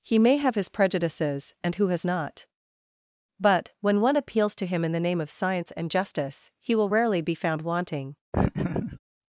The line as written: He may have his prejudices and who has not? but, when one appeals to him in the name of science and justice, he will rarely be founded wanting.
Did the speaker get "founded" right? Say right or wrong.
wrong